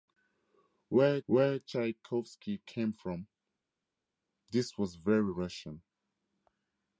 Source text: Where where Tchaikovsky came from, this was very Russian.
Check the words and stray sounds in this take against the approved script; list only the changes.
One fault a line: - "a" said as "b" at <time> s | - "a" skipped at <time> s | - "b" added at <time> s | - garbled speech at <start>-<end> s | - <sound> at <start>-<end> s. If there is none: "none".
none